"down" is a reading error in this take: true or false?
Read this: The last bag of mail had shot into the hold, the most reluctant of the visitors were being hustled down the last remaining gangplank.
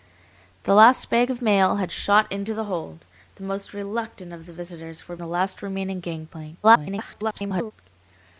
true